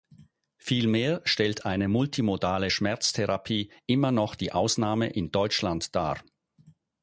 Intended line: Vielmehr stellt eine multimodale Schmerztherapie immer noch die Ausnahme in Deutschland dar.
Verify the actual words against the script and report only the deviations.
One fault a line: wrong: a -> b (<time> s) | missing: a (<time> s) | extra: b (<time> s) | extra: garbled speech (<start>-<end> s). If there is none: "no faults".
no faults